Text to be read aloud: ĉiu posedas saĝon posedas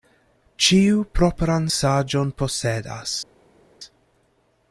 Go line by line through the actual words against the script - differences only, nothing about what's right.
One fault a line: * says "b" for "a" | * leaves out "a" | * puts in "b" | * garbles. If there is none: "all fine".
* says "propran" for "posedas"